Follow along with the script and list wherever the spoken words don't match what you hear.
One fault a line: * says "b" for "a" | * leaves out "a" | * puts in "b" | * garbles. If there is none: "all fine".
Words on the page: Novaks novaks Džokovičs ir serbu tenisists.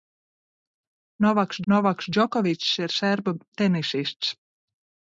all fine